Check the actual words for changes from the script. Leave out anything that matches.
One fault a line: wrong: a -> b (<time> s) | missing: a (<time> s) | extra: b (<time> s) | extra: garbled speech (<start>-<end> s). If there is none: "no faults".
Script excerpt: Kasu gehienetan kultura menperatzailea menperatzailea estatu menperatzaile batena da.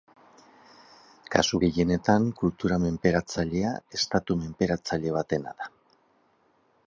missing: menperatzailea (3.7 s)